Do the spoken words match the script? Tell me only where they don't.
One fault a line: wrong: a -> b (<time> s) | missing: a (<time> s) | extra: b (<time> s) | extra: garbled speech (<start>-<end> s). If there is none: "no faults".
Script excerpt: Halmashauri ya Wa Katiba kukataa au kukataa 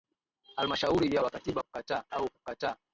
no faults